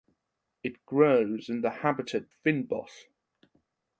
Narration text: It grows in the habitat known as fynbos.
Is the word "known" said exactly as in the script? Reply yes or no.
no